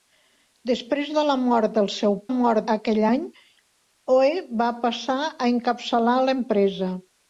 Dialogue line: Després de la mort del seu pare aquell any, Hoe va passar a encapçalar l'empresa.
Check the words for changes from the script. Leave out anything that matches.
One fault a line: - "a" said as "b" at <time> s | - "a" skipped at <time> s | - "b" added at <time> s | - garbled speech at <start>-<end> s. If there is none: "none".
- "pare" said as "mort" at 2.3 s